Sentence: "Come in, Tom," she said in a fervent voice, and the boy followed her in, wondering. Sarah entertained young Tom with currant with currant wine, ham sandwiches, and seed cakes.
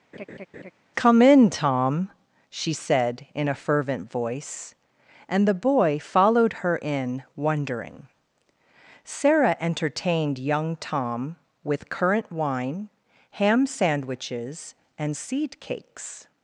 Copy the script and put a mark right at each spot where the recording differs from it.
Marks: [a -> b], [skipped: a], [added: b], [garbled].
"Come in, Tom," she said in a fervent voice, and the boy followed her in, wondering. Sarah entertained young Tom with currant [skipped: with currant] wine, ham sandwiches, and seed cakes.